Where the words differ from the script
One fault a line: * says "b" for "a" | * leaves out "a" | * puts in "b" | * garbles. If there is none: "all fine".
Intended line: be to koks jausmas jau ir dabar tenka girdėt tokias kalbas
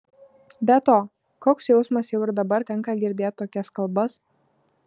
all fine